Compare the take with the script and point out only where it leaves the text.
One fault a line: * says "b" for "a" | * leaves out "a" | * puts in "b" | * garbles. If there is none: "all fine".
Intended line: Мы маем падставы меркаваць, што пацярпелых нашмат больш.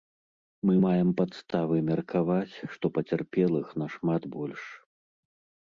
all fine